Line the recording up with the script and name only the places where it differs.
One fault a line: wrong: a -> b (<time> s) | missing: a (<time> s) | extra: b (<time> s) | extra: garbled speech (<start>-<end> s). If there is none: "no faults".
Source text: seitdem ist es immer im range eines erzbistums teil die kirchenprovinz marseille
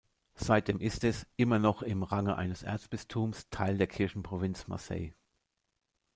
extra: noch (1.6 s)
wrong: die -> der (3.8 s)